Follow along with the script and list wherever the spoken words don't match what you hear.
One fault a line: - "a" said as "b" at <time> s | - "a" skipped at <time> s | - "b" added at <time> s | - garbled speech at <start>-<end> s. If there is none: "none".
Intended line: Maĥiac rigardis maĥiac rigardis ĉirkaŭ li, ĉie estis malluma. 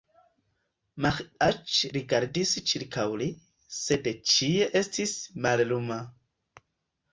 - "maĥiac rigardis" skipped at 2.5 s
- "sed" added at 3.8 s